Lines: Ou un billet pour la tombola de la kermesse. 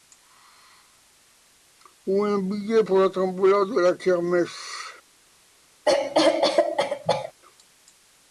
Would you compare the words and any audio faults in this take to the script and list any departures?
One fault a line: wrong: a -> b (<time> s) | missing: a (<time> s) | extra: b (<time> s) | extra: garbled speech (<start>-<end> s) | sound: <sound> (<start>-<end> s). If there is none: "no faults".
sound: cough (5.9-7.3 s)